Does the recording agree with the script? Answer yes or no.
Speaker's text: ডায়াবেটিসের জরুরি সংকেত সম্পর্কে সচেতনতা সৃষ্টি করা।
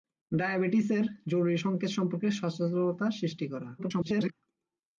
no